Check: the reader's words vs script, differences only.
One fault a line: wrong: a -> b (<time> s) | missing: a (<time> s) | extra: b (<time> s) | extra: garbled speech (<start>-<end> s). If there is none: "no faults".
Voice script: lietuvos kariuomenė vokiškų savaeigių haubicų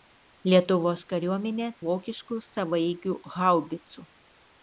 no faults